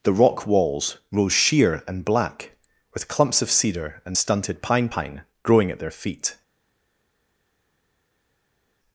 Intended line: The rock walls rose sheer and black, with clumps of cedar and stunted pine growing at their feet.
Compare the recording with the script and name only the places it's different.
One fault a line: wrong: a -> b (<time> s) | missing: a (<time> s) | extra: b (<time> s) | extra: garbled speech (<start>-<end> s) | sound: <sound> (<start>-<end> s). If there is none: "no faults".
extra: pine (4.9 s)